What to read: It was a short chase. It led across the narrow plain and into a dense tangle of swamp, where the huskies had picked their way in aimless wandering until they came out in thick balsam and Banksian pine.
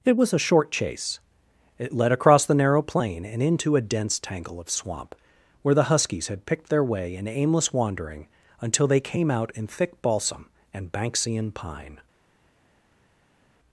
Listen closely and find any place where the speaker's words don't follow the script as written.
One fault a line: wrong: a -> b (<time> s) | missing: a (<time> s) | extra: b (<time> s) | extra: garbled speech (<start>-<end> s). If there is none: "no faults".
no faults